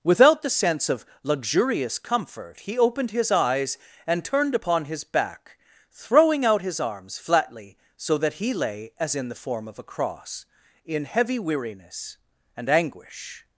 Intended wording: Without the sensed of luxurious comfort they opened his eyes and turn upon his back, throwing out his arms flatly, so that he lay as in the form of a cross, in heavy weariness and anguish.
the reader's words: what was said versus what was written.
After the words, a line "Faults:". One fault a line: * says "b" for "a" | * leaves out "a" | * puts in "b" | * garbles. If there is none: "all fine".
Without the sense of luxurious comfort he opened his eyes and turned upon his back, throwing out his arms flatly, so that he lay as in the form of a cross, in heavy weariness and anguish.
Faults:
* says "sense" for "sensed"
* says "he" for "they"
* says "turned" for "turn"